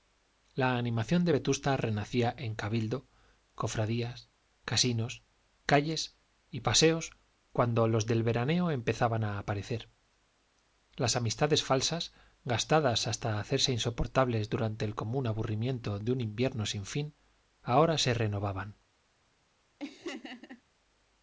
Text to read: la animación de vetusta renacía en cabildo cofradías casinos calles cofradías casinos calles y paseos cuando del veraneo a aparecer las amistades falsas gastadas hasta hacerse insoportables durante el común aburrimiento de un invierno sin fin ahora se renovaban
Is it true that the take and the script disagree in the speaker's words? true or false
true